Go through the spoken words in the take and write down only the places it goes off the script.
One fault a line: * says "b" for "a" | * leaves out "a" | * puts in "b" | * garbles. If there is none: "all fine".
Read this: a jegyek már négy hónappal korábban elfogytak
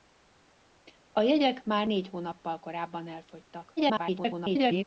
* garbles